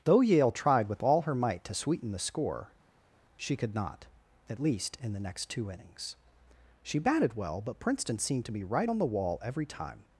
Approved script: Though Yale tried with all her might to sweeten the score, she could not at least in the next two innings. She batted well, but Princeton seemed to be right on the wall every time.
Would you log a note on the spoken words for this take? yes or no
no